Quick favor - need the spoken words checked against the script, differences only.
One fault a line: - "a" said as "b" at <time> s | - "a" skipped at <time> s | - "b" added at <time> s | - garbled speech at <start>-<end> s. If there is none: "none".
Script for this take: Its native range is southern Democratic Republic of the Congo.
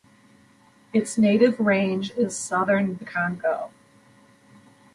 - "Democratic Republic of" skipped at 3.0 s